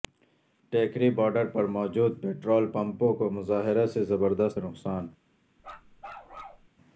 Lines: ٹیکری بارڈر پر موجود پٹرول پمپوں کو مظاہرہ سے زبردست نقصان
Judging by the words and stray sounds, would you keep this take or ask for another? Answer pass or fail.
fail